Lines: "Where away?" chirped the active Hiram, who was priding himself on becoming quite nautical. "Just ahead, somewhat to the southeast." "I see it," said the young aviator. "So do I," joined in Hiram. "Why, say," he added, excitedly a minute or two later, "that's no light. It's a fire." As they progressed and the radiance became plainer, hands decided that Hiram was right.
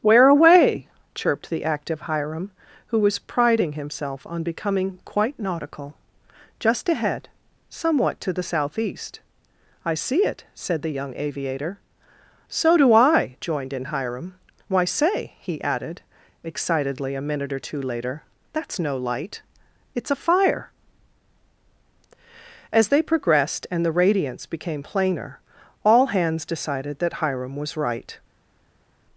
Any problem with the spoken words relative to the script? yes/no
yes